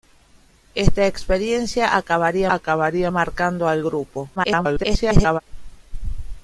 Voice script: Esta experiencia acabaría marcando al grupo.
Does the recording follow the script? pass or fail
fail